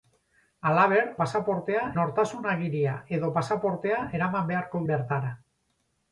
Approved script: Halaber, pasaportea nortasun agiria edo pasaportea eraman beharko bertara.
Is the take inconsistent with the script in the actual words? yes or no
no